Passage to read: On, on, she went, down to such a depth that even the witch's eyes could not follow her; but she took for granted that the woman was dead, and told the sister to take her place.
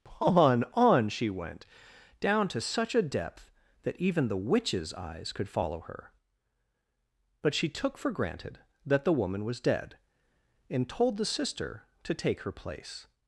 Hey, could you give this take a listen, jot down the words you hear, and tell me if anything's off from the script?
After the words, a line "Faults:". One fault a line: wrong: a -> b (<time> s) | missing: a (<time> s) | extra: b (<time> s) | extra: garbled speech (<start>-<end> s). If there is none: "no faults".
On, on, she went, down to such a depth that even the witch's eyes could follow her; but she took for granted that the woman was dead, and told the sister to take her place.
Faults:
missing: not (5.5 s)